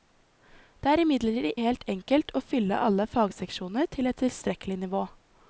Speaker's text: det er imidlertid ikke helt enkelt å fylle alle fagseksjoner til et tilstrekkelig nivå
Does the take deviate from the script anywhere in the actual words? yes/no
yes